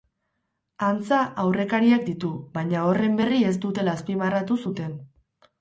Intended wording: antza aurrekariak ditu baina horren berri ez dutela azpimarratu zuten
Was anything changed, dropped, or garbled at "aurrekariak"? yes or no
no